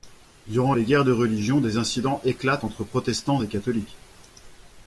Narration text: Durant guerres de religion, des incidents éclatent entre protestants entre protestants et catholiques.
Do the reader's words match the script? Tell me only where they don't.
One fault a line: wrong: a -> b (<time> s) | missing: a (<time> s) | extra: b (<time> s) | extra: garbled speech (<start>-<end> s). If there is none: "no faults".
extra: les (0.7 s)
missing: entre protestants (3.4 s)